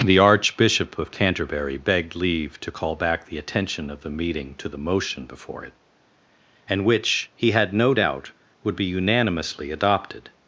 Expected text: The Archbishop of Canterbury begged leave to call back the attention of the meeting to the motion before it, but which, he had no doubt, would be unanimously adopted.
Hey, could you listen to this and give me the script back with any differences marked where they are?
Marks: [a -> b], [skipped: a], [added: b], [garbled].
The Archbishop of Canterbury begged leave to call back the attention of the meeting to the motion before it, [but -> and] which, he had no doubt, would be unanimously adopted.